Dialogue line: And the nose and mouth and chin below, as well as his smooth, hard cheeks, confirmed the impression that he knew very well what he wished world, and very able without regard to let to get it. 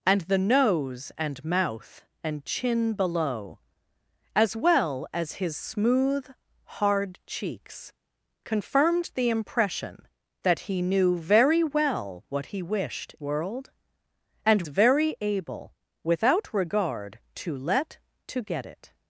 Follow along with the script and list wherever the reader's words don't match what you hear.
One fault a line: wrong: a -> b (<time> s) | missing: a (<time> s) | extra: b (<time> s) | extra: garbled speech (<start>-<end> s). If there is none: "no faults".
no faults